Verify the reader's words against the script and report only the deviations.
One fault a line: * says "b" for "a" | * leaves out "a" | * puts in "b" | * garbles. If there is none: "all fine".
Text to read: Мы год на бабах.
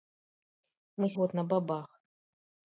all fine